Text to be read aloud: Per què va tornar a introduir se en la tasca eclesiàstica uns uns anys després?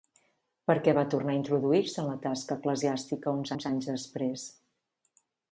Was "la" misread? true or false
false